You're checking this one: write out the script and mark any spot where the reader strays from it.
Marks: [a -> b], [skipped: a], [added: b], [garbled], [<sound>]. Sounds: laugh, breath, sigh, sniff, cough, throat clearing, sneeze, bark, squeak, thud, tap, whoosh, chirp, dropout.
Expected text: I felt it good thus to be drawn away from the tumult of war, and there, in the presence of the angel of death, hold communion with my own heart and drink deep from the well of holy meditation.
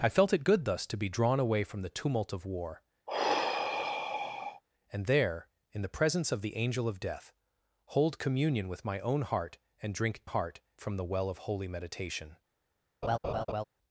I felt it good thus to be drawn away from the tumult of war, [sigh] and there, in the presence of the angel of death, hold communion with my own heart and drink [deep -> heart] from the well of holy meditation. [laugh]